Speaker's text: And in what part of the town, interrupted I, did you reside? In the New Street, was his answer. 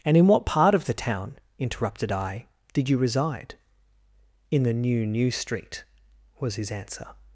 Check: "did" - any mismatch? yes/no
no